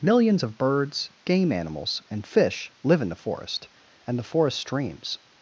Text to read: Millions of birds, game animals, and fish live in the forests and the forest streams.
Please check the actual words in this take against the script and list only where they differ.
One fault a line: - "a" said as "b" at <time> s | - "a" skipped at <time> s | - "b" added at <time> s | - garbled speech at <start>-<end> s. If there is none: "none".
- "forests" said as "forest" at 3.1 s